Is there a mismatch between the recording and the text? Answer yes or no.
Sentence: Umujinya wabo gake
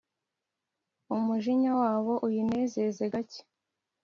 yes